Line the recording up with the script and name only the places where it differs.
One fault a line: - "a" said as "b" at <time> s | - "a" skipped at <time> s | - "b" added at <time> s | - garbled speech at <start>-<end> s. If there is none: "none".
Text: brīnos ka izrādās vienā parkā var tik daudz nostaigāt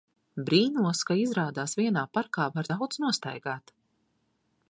- "tik" skipped at 2.7 s